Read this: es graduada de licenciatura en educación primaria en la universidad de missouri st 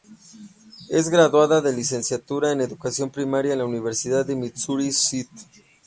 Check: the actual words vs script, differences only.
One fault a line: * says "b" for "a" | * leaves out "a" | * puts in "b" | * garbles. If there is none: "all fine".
all fine